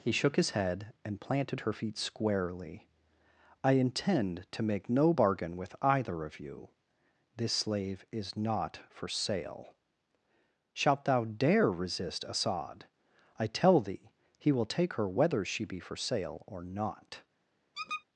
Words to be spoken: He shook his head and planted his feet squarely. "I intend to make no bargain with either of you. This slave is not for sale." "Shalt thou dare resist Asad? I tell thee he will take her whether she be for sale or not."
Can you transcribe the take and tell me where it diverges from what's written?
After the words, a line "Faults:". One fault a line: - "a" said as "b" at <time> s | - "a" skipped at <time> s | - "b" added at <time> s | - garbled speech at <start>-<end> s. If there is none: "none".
He shook his head and planted her feet squarely. "I intend to make no bargain with either of you. This slave is not for sale." "Shalt thou dare resist Asad? I tell thee he will take her whether she be for sale or not."
Faults:
- "his" said as "her" at 1.6 s